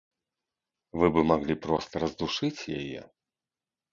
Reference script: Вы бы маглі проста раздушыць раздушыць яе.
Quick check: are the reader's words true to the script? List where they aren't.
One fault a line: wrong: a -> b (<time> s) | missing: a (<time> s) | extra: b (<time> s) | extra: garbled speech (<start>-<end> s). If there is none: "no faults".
missing: раздушыць (2.7 s)